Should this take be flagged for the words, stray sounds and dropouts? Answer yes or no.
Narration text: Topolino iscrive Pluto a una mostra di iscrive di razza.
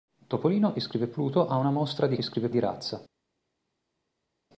no